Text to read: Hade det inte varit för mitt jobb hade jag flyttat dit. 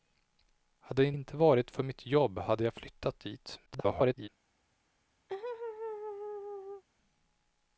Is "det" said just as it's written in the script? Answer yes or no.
no